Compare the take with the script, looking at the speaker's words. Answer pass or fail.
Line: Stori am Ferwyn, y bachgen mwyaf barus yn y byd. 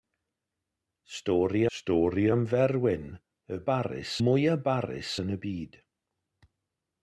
fail